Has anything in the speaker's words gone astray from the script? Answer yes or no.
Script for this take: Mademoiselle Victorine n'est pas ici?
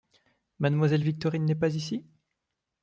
no